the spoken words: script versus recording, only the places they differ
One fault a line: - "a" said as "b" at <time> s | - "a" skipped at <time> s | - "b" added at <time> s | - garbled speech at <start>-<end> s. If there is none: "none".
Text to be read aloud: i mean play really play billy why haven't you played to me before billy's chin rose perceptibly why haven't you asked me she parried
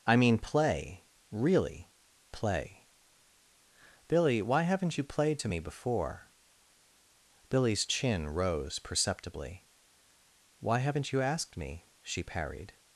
none